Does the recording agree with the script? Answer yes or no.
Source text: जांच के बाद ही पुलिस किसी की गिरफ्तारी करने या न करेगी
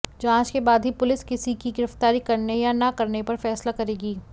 no